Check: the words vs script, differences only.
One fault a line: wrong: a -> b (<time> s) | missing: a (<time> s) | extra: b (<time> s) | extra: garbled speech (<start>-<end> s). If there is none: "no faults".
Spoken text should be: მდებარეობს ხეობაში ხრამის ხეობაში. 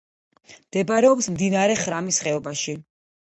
wrong: ხეობაში -> მდინარე (1.4 s)